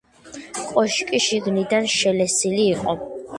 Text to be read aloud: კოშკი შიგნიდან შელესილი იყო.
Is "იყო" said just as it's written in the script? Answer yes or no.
yes